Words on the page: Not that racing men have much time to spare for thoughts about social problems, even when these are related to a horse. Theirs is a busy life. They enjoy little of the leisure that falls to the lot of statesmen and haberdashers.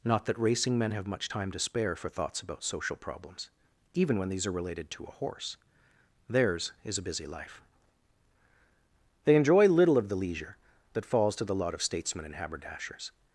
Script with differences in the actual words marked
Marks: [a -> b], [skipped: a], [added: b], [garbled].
Not that racing men have much time to spare for thoughts about social problems, even when these are related to a horse. Theirs is a busy life. They enjoy little of the leisure that falls to the lot of statesmen and haberdashers.